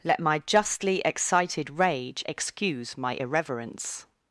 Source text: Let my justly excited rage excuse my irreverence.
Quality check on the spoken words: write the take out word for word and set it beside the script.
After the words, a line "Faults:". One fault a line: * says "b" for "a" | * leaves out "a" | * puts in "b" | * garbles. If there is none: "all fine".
Let my justly excited rage excuse my irreverence.
Faults:
all fine